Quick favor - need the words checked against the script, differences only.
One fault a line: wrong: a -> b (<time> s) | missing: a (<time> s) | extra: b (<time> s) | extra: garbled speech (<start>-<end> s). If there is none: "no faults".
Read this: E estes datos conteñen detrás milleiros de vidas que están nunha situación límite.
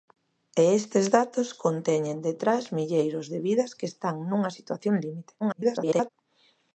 extra: garbled speech (5.4-6.1 s)